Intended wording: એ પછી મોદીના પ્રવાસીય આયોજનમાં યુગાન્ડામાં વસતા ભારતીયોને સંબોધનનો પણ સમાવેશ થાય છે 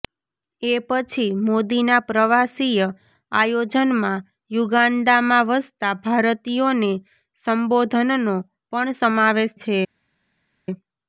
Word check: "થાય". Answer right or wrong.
wrong